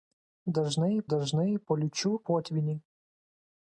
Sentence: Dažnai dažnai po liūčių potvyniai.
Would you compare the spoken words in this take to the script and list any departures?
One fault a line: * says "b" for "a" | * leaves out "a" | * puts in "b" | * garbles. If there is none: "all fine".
all fine